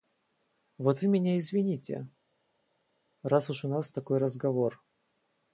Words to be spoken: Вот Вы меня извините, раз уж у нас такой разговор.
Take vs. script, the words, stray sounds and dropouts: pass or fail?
pass